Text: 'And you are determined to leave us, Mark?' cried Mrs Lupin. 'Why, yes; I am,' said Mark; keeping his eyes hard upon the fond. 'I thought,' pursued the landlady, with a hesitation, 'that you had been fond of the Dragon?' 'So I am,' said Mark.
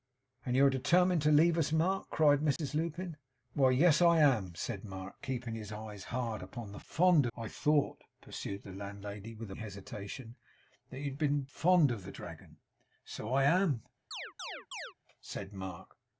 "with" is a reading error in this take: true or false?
false